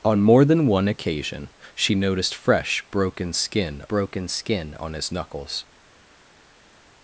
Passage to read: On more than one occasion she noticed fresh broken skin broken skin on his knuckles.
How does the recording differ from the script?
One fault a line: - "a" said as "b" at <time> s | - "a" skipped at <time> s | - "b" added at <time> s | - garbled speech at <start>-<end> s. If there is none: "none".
none